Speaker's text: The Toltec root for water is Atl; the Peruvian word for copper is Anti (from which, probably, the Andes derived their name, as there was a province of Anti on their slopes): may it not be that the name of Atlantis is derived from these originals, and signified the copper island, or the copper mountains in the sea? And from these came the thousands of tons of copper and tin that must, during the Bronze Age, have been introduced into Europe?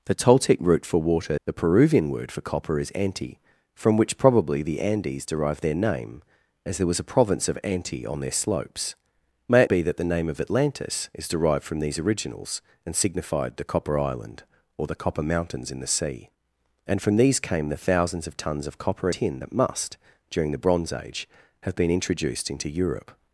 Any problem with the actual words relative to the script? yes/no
yes